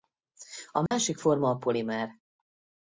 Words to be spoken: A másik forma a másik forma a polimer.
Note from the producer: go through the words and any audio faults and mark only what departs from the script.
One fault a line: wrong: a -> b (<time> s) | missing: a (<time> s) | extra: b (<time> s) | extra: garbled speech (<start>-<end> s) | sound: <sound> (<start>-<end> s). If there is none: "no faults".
sound: dropout (0.9-0.9 s)
missing: másik forma a (1.6 s)